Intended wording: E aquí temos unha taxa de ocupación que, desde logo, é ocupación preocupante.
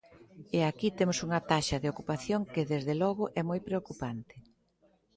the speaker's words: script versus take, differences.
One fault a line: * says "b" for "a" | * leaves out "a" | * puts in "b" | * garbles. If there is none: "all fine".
* says "moi" for "ocupación"